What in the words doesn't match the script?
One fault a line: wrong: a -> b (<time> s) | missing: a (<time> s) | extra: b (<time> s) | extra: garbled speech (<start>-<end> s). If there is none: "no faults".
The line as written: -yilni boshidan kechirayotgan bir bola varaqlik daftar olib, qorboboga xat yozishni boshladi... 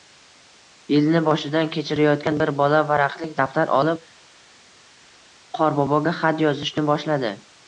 no faults